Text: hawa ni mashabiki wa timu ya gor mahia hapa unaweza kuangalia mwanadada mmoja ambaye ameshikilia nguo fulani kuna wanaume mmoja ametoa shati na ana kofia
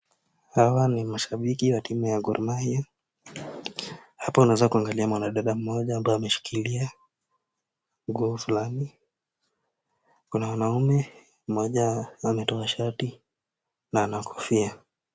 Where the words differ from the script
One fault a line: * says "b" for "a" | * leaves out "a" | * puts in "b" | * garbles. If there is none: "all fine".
all fine